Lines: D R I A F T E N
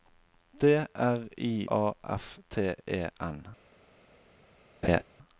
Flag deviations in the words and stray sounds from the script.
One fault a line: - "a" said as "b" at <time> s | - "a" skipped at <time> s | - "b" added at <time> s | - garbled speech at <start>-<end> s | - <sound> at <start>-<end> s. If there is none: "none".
- laugh at 4.8-5.0 s